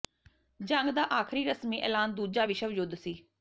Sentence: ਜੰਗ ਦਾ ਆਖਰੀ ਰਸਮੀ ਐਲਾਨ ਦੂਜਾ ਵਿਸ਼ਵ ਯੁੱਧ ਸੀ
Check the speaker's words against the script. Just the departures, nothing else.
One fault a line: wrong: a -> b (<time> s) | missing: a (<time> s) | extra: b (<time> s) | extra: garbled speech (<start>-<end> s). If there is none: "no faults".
no faults